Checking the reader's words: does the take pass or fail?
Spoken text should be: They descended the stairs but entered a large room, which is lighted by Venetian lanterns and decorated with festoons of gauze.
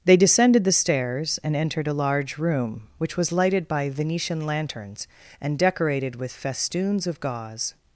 fail